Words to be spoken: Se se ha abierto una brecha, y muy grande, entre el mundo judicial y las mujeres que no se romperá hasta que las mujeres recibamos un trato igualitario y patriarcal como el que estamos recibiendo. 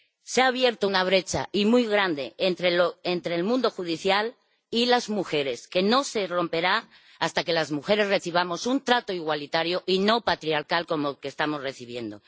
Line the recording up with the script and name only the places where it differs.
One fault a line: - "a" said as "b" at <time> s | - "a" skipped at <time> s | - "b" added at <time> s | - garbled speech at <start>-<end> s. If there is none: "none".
- "se" skipped at 0.4 s
- "no" added at 10.0 s